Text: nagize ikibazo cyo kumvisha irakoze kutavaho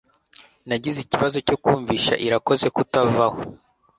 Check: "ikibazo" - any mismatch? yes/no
no